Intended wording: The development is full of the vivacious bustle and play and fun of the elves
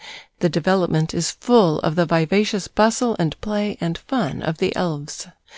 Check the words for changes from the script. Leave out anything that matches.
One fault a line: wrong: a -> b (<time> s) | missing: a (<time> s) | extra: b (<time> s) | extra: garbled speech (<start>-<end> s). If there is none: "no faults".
no faults